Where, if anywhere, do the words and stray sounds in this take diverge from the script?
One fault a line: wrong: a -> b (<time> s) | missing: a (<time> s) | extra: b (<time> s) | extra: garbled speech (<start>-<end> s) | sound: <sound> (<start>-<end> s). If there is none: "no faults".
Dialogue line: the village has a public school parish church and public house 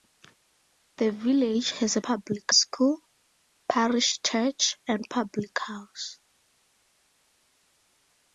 no faults